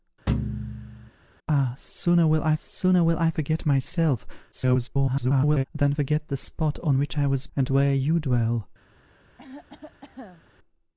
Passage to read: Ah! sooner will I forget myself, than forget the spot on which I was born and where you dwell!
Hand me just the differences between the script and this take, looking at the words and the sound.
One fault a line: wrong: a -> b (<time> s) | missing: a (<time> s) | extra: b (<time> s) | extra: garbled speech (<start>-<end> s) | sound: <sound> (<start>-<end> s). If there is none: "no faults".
sound: thud (0.3-1.1 s)
extra: sooner will I (2.6 s)
extra: garbled speech (4.5-5.6 s)
missing: born (7.5 s)
sound: cough (9.4-10.5 s)